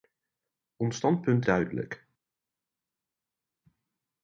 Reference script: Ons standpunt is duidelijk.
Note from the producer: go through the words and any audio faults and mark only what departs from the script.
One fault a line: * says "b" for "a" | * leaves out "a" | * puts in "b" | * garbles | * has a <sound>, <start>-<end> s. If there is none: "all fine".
* leaves out "is"